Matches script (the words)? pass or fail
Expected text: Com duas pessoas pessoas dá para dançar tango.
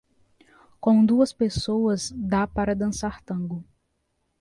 fail